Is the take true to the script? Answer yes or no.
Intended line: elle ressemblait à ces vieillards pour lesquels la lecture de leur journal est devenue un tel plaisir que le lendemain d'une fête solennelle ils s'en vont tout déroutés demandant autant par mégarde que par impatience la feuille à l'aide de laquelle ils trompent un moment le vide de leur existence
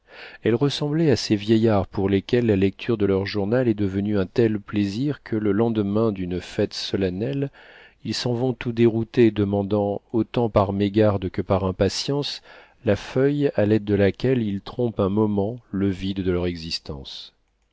yes